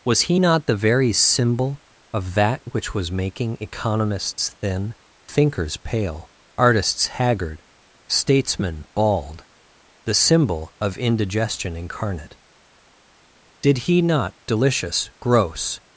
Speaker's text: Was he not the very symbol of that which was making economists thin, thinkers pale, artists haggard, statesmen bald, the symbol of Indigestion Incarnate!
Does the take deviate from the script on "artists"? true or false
false